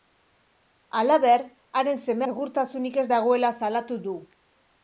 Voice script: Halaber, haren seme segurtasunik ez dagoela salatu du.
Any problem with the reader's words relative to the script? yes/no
no